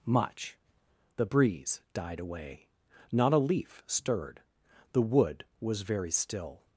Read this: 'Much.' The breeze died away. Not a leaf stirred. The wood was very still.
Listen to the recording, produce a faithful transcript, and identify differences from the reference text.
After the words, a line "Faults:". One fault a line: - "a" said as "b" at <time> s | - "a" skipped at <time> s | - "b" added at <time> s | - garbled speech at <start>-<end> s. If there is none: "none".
'Much.' The breeze died away. Not a leaf stirred. The wood was very still.
Faults:
none